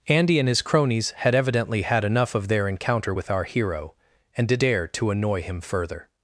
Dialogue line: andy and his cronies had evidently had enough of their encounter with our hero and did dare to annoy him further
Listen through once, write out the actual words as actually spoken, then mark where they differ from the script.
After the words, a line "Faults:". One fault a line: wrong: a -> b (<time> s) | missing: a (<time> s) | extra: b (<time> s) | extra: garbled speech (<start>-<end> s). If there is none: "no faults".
andy and his cronies had evidently had enough of their encounter with our hero and did dare to annoy him further
Faults:
no faults